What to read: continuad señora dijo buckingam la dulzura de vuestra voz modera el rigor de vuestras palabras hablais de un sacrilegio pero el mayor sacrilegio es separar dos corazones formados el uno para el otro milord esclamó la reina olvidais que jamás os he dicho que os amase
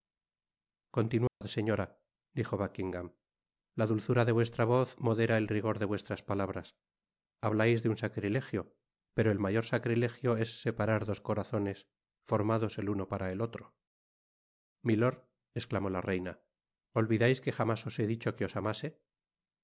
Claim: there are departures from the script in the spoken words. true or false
false